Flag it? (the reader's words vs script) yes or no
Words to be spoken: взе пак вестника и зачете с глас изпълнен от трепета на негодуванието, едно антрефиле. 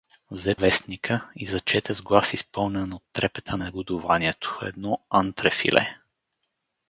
yes